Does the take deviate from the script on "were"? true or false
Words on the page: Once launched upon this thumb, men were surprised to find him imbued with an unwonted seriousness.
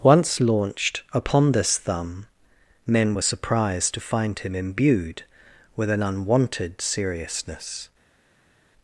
false